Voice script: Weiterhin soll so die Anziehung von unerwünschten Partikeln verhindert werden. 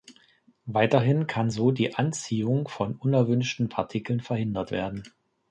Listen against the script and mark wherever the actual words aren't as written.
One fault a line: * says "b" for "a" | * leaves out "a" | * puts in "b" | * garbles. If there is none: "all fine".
* says "kann" for "soll"